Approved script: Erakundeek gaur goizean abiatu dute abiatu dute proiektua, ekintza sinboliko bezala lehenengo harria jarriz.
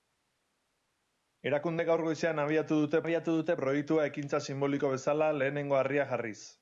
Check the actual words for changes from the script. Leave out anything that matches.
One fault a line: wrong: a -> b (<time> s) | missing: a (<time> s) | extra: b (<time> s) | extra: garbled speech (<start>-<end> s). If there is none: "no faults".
no faults